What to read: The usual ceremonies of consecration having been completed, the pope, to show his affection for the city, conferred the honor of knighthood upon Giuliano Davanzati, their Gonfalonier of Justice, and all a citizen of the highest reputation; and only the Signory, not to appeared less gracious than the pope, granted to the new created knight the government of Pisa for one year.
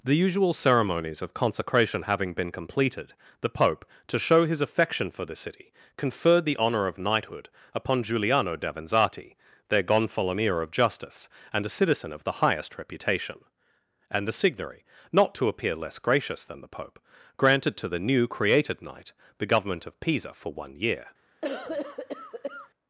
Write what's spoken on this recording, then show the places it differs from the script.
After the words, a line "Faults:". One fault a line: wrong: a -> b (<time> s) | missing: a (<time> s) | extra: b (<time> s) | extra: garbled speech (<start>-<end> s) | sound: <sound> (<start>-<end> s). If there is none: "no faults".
The usual ceremonies of consecration having been completed, the pope, to show his affection for the city, conferred the honor of knighthood upon Giuliano Davanzati, their Gonfalonier of Justice, and a citizen of the highest reputation; and the Signory, not to appear less gracious than the pope, granted to the new created knight the government of Pisa for one year.
Faults:
missing: all (11.6 s)
missing: only (14.3 s)
wrong: appeared -> appear (15.5 s)
sound: cough (21.4-22.7 s)